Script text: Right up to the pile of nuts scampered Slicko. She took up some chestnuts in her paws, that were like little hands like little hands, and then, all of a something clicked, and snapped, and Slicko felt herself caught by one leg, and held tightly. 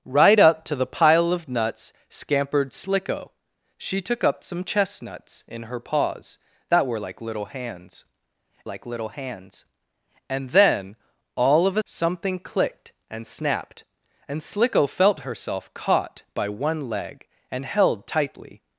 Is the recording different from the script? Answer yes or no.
no